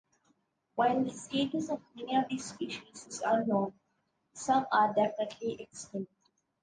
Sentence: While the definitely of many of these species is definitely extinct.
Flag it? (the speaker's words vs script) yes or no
yes